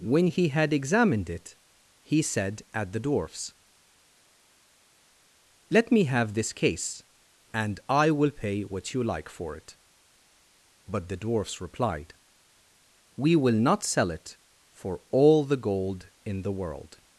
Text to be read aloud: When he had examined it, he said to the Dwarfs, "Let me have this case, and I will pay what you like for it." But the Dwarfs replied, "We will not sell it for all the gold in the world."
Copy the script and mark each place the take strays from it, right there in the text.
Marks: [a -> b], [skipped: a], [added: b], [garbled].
When he had examined it, he said [to -> at] the Dwarfs, "Let me have this case, and I will pay what you like for it." But the Dwarfs replied, "We will not sell it for all the gold in the world."